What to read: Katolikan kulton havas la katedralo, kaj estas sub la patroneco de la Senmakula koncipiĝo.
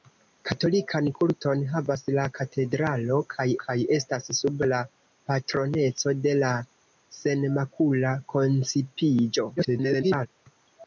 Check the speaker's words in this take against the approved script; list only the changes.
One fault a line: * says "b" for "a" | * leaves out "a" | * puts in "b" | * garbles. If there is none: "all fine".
* puts in "kaj"
* garbles